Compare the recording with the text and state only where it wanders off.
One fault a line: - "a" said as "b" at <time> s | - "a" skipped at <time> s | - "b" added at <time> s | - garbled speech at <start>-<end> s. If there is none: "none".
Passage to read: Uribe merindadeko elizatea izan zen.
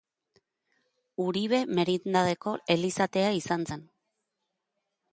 none